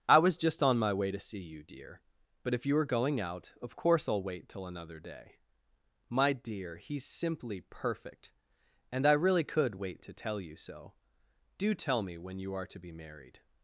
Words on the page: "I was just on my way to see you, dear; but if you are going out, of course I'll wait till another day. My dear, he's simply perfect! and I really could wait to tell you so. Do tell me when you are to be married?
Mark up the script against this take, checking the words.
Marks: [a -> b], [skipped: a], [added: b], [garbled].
"I was just on my way to see you, dear; but if you are going out, of course I'll wait till another day. My dear, he's simply perfect! and I really could wait to tell you so. Do tell me when you are to be married?